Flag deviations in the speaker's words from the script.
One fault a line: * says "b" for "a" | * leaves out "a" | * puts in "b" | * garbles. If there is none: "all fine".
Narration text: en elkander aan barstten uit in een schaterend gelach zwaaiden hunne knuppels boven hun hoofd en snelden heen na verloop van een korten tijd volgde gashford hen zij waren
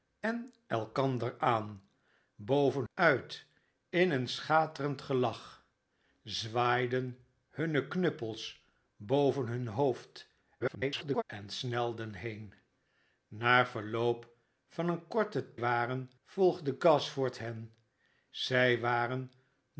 * says "boven" for "barstten"
* garbles
* says "waren" for "tijd"